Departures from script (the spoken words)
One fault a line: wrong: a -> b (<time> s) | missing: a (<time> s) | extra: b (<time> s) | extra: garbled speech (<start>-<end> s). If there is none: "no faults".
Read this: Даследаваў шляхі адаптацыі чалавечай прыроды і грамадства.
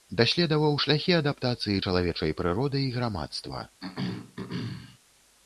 no faults